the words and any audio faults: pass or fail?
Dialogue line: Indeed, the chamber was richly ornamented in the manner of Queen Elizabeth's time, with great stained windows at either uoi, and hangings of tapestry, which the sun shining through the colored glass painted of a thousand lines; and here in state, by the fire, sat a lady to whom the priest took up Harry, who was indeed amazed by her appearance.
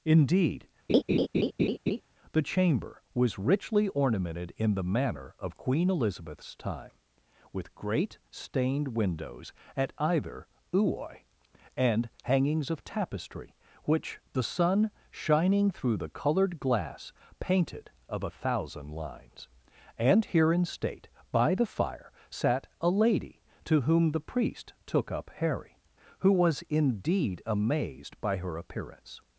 fail